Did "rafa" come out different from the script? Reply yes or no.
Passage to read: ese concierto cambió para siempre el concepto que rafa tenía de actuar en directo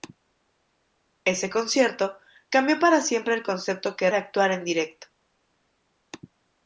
yes